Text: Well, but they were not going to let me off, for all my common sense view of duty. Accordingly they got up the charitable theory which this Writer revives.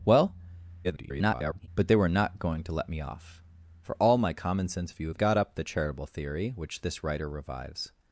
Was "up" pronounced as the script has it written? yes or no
yes